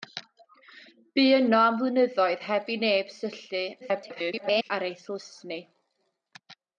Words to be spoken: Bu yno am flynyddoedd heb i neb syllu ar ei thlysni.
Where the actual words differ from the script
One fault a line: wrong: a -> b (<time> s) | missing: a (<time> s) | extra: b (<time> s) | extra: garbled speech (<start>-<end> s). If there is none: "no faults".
extra: garbled speech (3.8-4.7 s)